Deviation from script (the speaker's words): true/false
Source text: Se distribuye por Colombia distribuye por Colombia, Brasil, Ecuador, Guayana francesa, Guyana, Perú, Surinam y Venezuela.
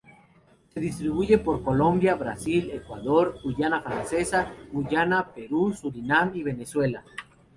true